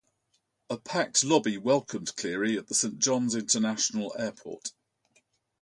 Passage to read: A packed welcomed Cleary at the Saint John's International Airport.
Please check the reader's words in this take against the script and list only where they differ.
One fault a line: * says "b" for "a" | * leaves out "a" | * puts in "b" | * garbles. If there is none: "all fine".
* puts in "lobby"